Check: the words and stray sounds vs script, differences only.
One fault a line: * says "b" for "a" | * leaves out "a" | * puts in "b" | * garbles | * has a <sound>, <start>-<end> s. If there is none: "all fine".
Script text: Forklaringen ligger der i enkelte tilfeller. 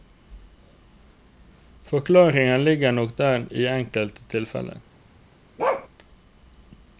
* puts in "nok"
* has a bark, 5.6-5.9 s